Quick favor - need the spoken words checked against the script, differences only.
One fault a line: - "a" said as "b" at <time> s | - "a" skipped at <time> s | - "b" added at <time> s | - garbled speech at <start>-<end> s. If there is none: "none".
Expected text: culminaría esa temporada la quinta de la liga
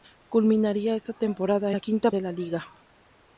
none